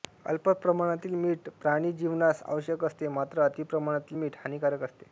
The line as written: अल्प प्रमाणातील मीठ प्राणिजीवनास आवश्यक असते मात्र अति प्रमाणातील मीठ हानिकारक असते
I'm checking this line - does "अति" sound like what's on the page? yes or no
yes